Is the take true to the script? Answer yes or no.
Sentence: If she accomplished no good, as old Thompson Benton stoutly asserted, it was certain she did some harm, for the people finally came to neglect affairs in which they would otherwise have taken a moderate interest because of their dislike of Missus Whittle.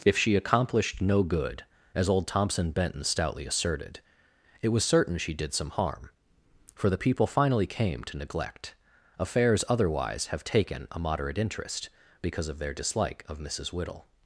no